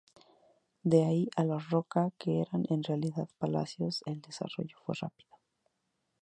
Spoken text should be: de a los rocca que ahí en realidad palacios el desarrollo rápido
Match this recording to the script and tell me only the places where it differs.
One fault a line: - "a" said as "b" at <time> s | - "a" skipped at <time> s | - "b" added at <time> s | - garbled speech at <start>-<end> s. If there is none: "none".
- "ahí" added at 1.0 s
- "ahí" said as "eran" at 2.4 s
- "fue" added at 4.8 s